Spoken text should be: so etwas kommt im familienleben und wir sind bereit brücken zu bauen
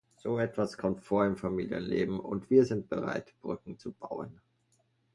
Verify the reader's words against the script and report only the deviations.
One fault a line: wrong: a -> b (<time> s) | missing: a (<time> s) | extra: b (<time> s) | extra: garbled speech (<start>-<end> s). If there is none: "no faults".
extra: vor (1.0 s)